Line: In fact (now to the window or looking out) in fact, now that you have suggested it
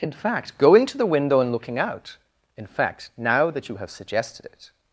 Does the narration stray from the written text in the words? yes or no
yes